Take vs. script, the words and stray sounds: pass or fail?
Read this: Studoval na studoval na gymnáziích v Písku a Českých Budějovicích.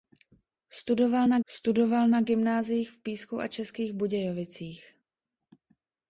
pass